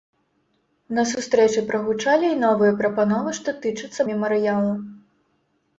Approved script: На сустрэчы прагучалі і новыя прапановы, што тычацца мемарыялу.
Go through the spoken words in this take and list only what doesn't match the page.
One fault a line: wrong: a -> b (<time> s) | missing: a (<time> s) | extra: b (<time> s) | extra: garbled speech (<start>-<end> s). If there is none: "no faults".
no faults